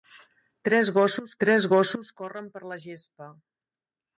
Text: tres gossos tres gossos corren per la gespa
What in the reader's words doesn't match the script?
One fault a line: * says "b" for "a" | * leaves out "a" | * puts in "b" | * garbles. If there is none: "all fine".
all fine